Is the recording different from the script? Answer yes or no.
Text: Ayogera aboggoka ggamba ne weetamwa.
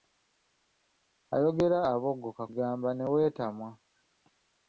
no